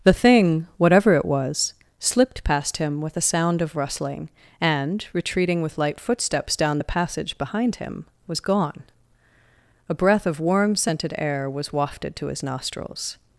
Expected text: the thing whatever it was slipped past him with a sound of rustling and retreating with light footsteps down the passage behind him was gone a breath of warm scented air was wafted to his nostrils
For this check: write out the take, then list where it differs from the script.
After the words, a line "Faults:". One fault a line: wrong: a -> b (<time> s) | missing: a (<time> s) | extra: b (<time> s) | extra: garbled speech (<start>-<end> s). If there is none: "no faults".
the thing whatever it was slipped past him with a sound of rustling and retreating with light footsteps down the passage behind him was gone a breath of warm scented air was wafted to his nostrils
Faults:
no faults